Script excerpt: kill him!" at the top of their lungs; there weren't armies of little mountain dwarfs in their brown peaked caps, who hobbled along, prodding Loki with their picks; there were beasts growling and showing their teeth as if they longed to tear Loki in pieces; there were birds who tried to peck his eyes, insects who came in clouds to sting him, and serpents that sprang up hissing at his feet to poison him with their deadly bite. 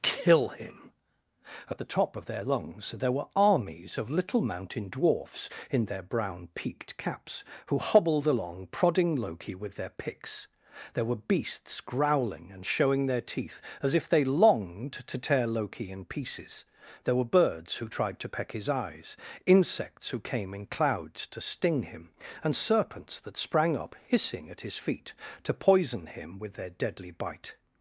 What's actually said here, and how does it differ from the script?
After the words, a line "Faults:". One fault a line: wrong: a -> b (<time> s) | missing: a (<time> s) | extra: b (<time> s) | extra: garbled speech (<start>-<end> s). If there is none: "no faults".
kill him!" at the top of their lungs; there were armies of little mountain dwarfs in their brown peaked caps, who hobbled along, prodding Loki with their picks; there were beasts growling and showing their teeth as if they longed to tear Loki in pieces; there were birds who tried to peck his eyes, insects who came in clouds to sting him, and serpents that sprang up hissing at his feet to poison him with their deadly bite.
Faults:
wrong: weren't -> were (3.1 s)